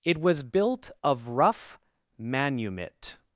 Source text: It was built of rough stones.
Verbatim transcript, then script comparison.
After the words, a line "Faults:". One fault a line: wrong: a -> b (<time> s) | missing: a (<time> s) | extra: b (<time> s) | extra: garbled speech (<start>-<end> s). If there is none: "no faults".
It was built of rough manumit.
Faults:
wrong: stones -> manumit (2.2 s)